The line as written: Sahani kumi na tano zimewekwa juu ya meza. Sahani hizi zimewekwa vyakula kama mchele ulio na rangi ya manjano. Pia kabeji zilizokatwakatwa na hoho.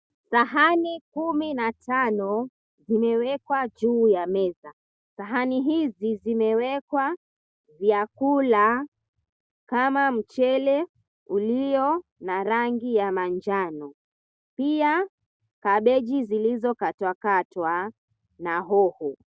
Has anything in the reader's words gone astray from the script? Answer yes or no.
no